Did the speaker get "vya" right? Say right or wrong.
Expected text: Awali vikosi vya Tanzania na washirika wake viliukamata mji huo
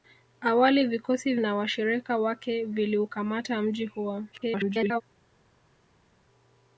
wrong